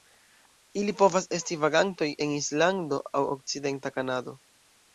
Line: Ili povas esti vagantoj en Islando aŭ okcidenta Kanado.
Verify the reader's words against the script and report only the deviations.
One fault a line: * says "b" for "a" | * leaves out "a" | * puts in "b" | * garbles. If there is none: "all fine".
all fine